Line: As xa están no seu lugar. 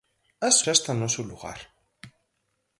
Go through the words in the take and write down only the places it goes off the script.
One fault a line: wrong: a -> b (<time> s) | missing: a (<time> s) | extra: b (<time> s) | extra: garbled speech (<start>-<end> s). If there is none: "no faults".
no faults